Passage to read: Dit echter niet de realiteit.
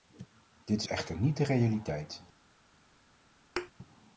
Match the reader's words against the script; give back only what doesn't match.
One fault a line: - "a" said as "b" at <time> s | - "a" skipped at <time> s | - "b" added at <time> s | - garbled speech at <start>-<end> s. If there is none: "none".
none